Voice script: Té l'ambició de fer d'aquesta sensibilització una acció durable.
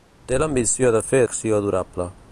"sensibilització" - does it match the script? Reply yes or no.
no